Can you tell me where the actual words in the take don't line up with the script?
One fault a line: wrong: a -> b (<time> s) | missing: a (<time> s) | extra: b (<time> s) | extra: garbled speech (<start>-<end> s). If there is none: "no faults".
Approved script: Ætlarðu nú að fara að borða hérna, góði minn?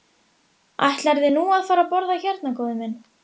no faults